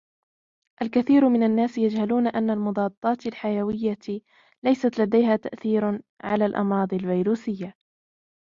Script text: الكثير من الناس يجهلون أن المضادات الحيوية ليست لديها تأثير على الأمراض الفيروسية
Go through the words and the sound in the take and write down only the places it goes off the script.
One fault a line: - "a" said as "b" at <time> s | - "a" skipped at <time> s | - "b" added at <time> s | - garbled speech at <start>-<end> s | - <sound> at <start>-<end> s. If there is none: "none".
none